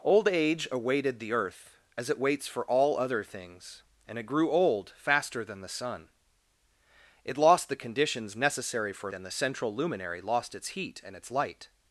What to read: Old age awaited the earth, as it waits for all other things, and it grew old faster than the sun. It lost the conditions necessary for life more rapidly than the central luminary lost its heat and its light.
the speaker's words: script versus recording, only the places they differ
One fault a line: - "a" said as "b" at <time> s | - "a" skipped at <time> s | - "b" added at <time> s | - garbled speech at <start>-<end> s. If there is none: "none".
- "life more rapidly" skipped at 9.1 s